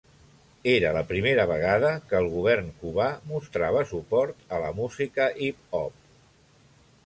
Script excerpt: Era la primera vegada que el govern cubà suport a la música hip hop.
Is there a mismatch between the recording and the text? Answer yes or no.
yes